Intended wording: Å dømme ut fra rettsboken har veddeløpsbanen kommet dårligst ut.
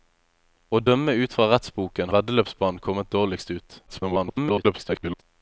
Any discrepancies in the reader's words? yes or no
yes